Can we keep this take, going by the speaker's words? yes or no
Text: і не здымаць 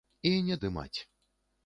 yes